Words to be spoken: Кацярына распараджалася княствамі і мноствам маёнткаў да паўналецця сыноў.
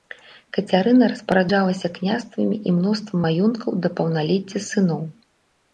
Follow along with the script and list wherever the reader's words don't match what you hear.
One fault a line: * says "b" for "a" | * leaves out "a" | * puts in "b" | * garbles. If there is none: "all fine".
all fine